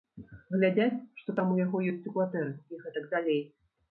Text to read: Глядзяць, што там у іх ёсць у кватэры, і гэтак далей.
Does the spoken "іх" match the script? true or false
false